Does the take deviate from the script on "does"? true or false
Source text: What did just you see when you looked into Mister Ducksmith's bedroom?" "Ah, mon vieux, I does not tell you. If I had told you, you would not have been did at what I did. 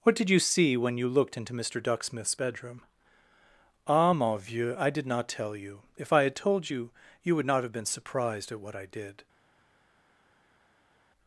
true